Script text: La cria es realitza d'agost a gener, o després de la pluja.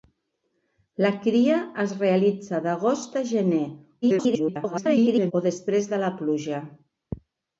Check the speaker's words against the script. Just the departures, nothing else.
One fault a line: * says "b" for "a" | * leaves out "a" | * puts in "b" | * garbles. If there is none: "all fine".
* garbles